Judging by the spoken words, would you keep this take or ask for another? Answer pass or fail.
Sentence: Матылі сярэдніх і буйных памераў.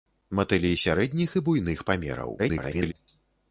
fail